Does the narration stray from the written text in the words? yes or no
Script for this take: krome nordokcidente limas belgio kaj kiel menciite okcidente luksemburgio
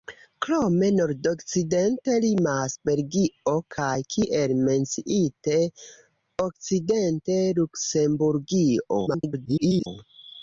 yes